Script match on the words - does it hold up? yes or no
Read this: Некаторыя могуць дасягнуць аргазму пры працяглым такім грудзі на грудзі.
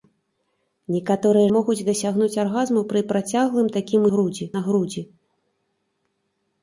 yes